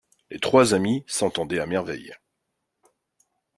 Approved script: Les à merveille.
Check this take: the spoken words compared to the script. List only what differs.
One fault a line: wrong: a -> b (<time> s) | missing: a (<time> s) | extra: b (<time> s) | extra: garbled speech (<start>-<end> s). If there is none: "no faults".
extra: trois amis s'entendaient (0.4 s)